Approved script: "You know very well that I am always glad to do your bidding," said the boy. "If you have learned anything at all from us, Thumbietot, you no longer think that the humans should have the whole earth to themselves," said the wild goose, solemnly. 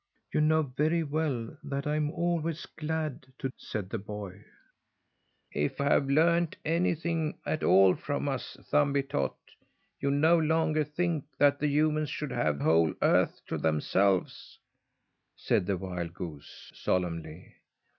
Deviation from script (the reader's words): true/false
true